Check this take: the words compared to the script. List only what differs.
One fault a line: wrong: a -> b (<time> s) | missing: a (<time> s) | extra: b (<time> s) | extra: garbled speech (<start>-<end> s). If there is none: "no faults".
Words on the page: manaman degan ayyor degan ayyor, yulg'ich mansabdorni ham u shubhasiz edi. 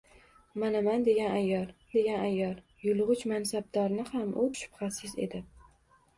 no faults